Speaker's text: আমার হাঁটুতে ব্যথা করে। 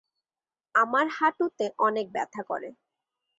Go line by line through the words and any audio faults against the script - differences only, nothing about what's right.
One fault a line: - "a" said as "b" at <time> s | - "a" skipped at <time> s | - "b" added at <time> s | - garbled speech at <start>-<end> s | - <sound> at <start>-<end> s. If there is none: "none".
- "অনেক" added at 1.8 s